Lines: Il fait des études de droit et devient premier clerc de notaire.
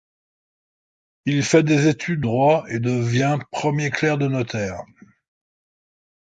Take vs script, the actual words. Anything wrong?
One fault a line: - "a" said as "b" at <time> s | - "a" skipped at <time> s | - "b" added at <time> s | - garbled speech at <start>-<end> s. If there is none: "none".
- "de" skipped at 2.2 s